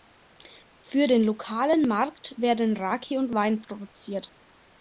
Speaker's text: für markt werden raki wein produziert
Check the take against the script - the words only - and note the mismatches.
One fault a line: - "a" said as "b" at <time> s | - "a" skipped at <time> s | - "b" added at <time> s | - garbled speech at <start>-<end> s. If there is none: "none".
- "den lokalen" added at 1.1 s
- "und" added at 3.2 s